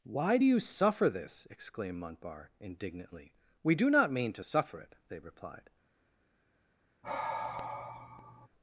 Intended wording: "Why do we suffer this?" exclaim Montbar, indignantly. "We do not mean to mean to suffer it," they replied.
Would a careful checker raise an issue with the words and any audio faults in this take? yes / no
yes